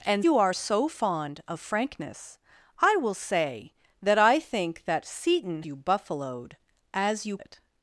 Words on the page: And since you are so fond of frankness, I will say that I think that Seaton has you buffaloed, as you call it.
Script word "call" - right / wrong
wrong